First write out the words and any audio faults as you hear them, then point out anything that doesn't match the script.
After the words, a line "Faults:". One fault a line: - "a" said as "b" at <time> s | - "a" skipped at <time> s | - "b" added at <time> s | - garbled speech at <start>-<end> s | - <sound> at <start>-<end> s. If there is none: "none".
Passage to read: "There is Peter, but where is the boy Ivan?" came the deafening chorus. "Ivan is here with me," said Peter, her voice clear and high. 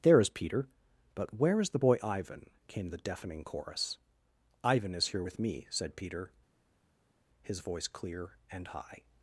"There is Peter, but where is the boy Ivan?" came the deafening chorus. "Ivan is here with me," said Peter, his voice clear and high.
Faults:
- "her" said as "his" at 7.4 s